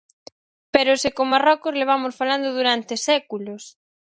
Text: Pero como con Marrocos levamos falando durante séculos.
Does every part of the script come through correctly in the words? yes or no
no